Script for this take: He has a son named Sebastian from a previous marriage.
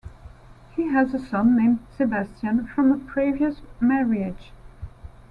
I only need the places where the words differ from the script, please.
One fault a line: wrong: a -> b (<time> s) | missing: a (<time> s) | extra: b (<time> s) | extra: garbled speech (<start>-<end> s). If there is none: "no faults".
no faults